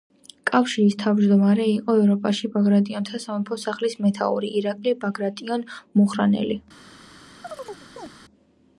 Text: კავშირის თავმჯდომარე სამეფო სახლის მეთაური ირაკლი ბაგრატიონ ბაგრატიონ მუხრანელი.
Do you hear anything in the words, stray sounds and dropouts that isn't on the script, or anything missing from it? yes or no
yes